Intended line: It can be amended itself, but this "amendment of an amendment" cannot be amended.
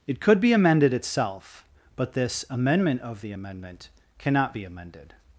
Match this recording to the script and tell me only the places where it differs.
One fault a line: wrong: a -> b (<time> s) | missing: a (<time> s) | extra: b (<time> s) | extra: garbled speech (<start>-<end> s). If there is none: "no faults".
wrong: can -> could (0.2 s)
wrong: an -> the (3.2 s)